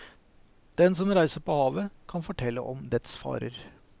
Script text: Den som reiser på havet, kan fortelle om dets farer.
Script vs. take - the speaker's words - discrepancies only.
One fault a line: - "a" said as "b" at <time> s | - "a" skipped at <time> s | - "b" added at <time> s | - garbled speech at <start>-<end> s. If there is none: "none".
none